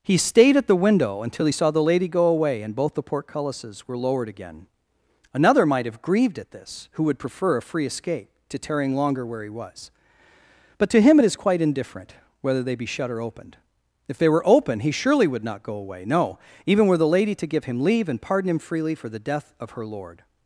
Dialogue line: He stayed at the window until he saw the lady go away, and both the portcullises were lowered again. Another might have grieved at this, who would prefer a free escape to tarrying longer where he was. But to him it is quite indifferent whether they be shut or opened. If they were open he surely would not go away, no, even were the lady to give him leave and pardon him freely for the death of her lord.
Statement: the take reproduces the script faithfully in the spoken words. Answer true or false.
true